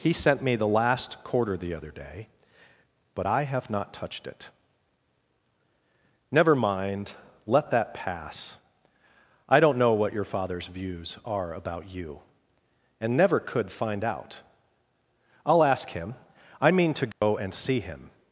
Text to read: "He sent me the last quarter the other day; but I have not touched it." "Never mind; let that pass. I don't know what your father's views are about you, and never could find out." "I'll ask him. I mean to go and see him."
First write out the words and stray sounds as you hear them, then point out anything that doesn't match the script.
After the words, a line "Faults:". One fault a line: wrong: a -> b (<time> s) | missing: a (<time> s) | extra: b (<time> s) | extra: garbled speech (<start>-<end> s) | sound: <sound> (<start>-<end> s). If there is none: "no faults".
"He sent me the last quarter the other day; but I have not touched it." "Never mind; let that pass. I don't know what your father's views are about you, and never could find out." "I'll ask him. I mean to go and see him."
Faults:
sound: dropout (17.1-17.2 s)